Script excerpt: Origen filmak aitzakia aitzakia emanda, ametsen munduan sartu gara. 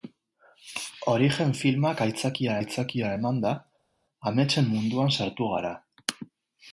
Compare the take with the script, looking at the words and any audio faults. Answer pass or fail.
pass